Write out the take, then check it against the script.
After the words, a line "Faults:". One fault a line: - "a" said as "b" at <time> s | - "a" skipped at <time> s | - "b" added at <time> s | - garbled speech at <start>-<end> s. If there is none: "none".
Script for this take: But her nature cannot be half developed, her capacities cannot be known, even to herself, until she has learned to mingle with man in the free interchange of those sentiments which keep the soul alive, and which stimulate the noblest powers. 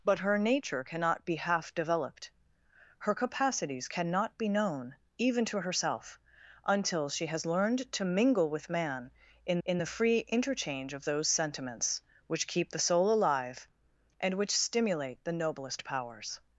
But her nature cannot be half developed, her capacities cannot be known, even to herself, until she has learned to mingle with man in in the free interchange of those sentiments which keep the soul alive, and which stimulate the noblest powers.
Faults:
- "in" added at 9.6 s